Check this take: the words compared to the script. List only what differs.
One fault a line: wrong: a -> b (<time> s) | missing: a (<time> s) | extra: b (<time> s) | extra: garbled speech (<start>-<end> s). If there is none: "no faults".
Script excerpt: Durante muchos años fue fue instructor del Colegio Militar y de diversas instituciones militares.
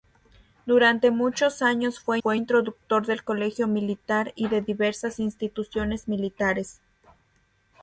no faults